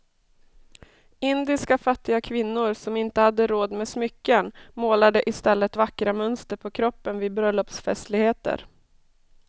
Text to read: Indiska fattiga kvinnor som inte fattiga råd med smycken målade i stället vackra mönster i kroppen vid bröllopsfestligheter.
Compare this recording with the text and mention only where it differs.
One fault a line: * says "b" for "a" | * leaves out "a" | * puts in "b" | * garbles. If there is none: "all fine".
* says "hade" for "fattiga"
* says "på" for "i"